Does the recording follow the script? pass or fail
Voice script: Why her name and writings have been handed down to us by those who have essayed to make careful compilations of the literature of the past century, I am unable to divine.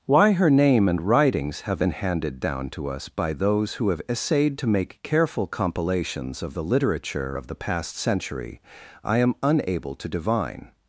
pass